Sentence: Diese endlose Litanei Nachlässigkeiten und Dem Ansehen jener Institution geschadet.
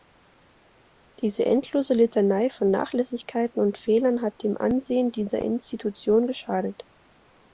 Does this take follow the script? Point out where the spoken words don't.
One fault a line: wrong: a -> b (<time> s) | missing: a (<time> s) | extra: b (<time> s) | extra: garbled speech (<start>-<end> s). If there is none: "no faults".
extra: von (2.5 s)
extra: Fehlern hat (3.8 s)
wrong: jener -> dieser (5.1 s)